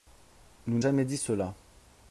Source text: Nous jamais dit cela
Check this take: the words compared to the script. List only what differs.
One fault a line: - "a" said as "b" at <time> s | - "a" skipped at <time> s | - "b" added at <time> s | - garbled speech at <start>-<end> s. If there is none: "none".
none